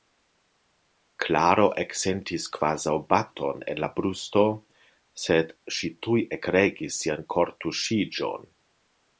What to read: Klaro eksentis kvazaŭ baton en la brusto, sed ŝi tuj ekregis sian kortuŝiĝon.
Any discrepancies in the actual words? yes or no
no